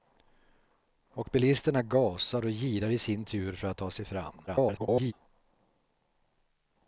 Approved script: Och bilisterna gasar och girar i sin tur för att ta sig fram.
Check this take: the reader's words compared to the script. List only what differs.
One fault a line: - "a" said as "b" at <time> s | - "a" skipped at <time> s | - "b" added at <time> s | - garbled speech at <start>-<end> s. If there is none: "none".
- garbled speech at 4.5-5.1 s